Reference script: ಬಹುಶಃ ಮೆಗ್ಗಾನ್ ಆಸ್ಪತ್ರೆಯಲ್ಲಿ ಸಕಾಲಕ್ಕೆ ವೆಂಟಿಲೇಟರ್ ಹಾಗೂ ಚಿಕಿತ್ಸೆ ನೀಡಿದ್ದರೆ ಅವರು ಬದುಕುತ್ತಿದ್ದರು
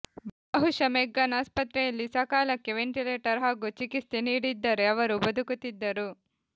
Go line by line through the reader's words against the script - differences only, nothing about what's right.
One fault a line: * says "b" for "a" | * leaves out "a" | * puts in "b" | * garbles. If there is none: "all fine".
all fine